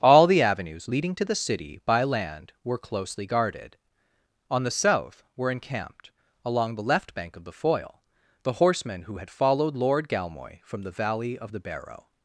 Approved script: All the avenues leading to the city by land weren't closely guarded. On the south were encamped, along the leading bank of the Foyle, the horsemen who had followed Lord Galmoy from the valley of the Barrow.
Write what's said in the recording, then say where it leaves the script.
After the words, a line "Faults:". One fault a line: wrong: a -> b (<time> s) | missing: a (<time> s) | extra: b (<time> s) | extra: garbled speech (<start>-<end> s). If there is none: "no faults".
All the avenues leading to the city by land were closely guarded. On the south were encamped, along the left bank of the Foyle, the horsemen who had followed Lord Galmoy from the valley of the Barrow.
Faults:
wrong: weren't -> were (2.6 s)
wrong: leading -> left (6.8 s)